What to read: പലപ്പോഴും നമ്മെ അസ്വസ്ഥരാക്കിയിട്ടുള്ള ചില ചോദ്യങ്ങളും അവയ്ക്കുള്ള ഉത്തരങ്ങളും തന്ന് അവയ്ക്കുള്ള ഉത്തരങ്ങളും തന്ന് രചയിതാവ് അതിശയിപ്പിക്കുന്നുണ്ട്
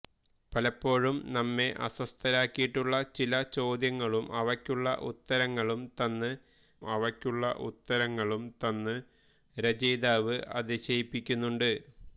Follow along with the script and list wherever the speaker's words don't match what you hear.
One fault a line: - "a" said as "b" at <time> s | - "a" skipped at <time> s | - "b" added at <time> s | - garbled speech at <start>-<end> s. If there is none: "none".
none